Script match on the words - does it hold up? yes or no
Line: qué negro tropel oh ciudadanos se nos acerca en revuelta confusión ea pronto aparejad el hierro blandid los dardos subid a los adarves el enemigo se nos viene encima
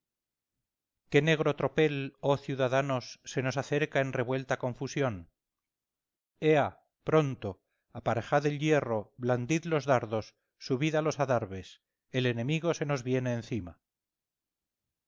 yes